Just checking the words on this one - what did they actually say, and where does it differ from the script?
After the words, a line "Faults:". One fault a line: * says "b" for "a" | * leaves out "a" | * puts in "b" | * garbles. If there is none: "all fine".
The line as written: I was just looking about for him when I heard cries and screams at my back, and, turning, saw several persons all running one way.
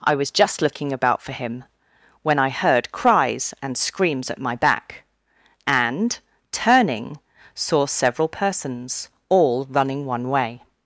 I was just looking about for him when I heard cries and screams at my back, and, turning, saw several persons all running one way.
Faults:
all fine